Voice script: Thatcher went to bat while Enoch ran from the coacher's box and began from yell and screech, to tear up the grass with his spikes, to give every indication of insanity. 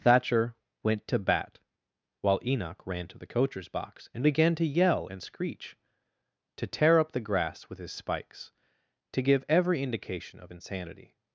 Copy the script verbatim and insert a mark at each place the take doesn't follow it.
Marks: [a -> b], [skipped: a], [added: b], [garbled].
Thatcher went to bat while Enoch ran [from -> to] the coacher's box and began [from -> to] yell and screech, to tear up the grass with his spikes, to give every indication of insanity.